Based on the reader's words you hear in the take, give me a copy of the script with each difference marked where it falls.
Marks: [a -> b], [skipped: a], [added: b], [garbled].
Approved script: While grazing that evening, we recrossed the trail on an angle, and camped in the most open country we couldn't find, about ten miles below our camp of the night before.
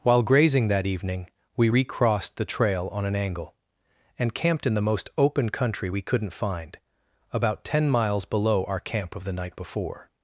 While grazing that evening, we recrossed the trail on an angle, and camped in the most open country we couldn't find, about ten miles below our camp of the night before.